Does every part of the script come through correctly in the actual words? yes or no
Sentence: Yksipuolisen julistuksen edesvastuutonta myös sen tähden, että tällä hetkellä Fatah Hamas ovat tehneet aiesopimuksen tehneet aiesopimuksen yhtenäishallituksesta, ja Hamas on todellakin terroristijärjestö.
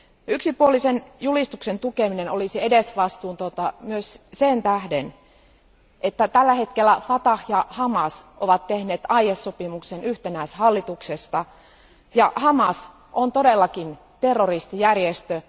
no